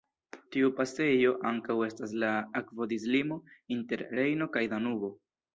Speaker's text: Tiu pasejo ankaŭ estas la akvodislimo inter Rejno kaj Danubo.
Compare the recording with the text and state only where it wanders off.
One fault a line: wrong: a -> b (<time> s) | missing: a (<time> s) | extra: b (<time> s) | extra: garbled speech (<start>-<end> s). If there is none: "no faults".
no faults